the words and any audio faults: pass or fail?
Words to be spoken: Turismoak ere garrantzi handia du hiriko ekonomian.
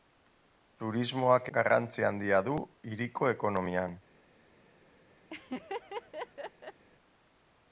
fail